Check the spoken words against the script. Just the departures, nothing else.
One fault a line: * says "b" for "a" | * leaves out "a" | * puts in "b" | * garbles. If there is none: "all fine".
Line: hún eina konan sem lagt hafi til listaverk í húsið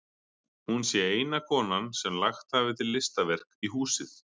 * puts in "sé"